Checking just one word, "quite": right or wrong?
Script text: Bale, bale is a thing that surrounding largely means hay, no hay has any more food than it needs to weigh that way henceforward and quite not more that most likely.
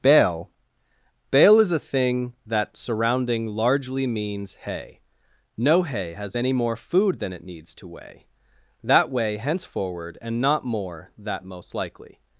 wrong